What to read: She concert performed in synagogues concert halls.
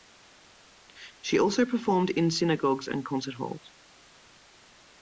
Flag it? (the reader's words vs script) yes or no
yes